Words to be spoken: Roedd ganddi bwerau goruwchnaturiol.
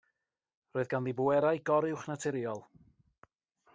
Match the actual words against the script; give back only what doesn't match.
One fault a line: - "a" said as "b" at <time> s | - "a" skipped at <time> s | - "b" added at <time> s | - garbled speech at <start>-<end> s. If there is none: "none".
none